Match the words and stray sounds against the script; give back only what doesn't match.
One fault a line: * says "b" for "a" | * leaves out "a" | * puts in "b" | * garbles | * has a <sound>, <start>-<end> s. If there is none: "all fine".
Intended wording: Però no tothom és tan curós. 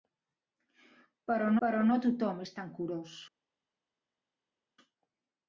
* puts in "però"